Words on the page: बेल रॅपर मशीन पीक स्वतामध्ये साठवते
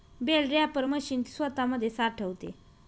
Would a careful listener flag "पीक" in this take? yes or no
yes